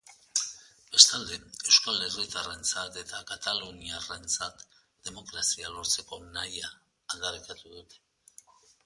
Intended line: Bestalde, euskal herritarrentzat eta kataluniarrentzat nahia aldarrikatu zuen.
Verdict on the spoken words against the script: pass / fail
fail